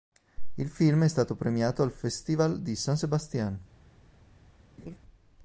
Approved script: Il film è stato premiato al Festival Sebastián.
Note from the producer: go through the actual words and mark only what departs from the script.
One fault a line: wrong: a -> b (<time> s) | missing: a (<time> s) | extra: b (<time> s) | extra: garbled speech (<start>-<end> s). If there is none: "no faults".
extra: di San (2.6 s)